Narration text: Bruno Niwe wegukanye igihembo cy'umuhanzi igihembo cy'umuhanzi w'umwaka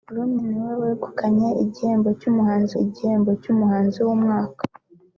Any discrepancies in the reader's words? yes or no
no